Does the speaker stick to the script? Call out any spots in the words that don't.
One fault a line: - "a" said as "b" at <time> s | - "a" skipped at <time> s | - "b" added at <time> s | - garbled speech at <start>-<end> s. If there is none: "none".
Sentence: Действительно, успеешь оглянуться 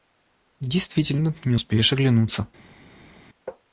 - "не" added at 1.4 s